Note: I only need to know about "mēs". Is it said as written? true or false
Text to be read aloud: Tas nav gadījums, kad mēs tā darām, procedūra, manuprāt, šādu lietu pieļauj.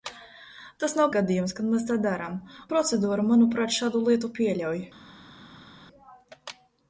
true